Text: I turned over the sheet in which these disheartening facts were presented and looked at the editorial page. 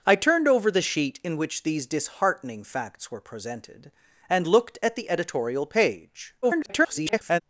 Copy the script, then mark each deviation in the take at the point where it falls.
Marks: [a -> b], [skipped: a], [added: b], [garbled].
I turned over the sheet in which these disheartening facts were presented and looked at the editorial page. [garbled]